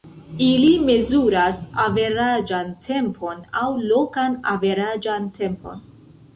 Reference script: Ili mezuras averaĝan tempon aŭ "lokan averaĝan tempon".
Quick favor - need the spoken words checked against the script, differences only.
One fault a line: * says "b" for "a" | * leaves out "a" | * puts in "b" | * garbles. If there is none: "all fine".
all fine